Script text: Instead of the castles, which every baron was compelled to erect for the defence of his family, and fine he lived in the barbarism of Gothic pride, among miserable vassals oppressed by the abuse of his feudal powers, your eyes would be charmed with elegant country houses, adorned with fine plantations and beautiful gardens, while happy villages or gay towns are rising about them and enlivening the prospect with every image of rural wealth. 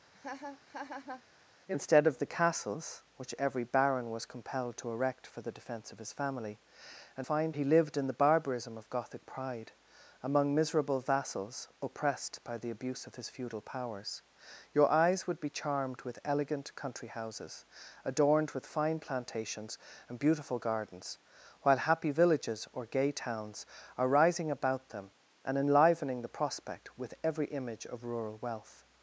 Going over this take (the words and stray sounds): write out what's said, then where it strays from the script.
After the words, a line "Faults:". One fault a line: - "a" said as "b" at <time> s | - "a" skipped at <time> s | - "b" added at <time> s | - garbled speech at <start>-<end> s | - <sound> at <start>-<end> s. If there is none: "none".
Instead of the castles, which every baron was compelled to erect for the defence of his family, and fine he lived in the barbarism of Gothic pride, among miserable vassals oppressed by the abuse of his feudal powers, your eyes would be charmed with elegant country houses, adorned with fine plantations and beautiful gardens, while happy villages or gay towns are rising about them and enlivening the prospect with every image of rural wealth.
Faults:
- laugh at 0.1-1.2 s